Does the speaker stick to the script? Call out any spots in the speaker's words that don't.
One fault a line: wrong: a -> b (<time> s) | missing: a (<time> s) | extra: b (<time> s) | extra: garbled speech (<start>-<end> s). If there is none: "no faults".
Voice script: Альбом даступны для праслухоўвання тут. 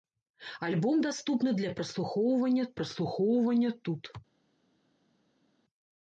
extra: праслухоўвання (2.8 s)